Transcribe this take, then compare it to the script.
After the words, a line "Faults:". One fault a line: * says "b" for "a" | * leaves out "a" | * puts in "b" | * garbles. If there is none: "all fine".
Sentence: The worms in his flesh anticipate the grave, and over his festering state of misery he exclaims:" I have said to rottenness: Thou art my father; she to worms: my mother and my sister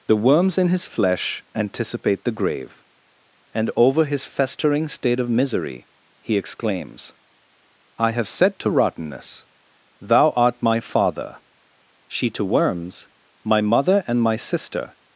The worms in his flesh anticipate the grave, and over his festering state of misery he exclaims:" I have said to rottenness: Thou art my father; she to worms: my mother and my sister
Faults:
all fine